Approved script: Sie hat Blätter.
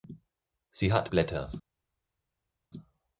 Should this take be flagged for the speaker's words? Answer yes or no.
no